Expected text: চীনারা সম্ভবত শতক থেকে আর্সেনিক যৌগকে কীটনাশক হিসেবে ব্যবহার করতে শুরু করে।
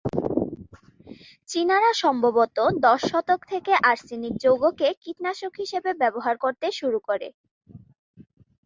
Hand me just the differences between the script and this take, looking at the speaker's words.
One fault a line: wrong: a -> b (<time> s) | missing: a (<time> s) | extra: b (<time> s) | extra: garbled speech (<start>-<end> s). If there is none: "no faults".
extra: দশ (2.8 s)